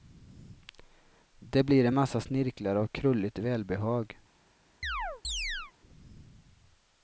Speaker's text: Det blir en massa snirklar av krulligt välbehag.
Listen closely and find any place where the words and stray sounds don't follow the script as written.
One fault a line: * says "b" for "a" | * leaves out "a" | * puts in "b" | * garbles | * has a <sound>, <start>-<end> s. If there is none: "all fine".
* has a chirp, 4.8-5.7 s